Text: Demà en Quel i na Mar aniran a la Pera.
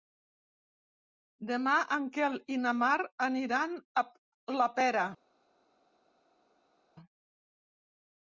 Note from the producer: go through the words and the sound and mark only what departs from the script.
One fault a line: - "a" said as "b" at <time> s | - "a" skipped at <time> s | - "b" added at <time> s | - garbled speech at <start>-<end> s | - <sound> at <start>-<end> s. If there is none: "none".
none